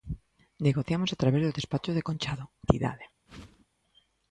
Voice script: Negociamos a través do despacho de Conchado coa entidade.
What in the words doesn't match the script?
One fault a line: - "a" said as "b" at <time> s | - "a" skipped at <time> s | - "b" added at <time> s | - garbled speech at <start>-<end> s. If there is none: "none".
- "coa" skipped at 2.5 s